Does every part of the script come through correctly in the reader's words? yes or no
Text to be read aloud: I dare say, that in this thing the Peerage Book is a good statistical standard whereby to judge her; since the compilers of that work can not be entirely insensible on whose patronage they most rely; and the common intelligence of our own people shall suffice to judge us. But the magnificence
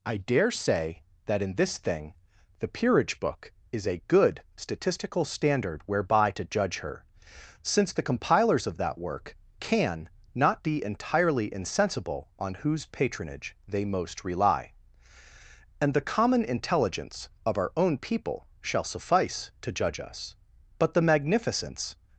yes